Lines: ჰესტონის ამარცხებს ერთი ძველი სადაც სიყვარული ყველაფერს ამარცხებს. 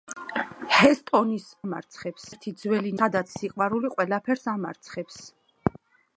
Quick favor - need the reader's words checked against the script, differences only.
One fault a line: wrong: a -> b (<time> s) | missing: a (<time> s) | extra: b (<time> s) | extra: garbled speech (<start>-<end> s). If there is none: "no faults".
no faults